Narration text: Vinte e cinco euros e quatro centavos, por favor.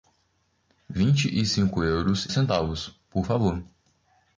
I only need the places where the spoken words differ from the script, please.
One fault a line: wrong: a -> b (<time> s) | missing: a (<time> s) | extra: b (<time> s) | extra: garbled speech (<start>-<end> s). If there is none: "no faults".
missing: e quatro (2.3 s)